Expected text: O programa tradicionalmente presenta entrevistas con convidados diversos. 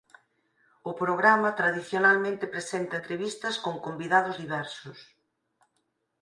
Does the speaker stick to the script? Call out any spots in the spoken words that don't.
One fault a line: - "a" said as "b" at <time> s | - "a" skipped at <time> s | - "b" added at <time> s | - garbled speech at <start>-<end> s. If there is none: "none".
none